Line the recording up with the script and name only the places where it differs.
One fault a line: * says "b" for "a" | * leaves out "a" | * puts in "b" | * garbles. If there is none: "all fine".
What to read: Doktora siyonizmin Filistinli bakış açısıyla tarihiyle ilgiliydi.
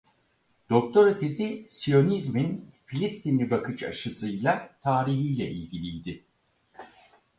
* puts in "tezi"